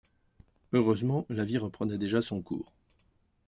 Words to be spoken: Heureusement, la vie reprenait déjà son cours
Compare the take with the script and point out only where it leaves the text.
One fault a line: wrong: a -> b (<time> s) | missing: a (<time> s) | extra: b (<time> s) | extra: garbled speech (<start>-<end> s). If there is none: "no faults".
no faults